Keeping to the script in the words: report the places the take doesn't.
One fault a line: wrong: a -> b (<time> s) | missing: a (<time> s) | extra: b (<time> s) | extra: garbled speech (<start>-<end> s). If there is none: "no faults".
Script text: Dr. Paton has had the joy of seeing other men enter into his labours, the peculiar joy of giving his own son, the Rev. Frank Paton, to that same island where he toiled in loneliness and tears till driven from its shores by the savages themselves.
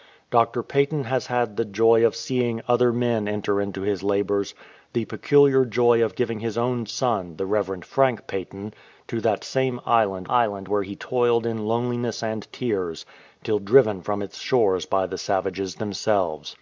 extra: island (10.3 s)